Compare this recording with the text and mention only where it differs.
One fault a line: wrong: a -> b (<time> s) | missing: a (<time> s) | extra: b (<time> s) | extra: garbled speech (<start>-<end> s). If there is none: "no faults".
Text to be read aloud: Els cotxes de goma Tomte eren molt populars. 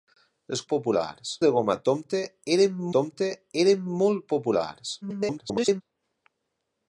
wrong: cotxes -> populars (0.7 s)
extra: Tomte eren (3.0 s)
extra: garbled speech (5.0-5.8 s)